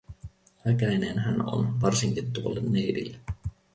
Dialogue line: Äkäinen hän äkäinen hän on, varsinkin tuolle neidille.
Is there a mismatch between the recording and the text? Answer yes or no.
yes